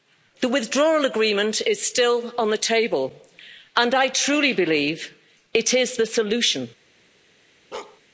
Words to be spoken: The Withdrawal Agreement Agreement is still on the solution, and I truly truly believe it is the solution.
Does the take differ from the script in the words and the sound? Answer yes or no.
yes